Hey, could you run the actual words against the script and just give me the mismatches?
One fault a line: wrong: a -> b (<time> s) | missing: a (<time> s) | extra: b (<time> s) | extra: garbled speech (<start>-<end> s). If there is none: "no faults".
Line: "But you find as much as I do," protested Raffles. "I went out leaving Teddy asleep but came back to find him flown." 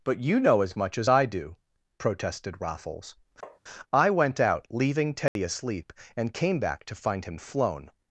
wrong: find -> know (0.4 s)
wrong: but -> and (6.2 s)